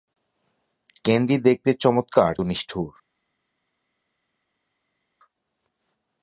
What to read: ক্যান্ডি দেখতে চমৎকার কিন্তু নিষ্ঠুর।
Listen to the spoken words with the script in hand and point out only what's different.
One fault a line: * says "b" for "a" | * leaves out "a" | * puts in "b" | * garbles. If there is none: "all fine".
* leaves out "কিন্তু"